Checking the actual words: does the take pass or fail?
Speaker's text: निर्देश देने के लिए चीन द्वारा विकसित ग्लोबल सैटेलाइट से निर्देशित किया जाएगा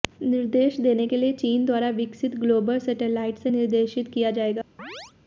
pass